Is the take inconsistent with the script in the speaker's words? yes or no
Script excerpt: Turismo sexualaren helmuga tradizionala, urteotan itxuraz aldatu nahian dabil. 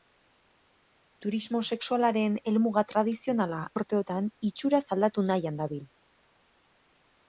no